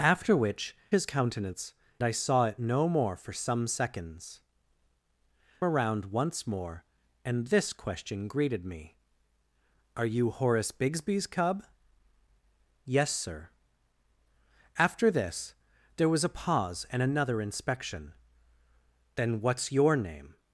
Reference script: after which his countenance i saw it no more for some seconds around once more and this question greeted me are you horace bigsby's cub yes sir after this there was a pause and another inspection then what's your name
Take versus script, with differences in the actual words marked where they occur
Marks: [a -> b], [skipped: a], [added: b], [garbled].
after which his countenance i saw it no more for some seconds around once more and this question greeted me are you horace bigsby's cub yes sir after this there was a pause and another inspection then what's your name